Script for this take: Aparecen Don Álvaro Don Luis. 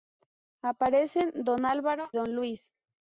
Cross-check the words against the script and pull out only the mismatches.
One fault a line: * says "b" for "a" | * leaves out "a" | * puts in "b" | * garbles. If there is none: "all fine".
all fine